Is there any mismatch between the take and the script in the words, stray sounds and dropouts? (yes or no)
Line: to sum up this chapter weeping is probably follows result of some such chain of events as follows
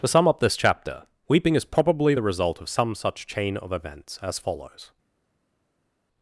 yes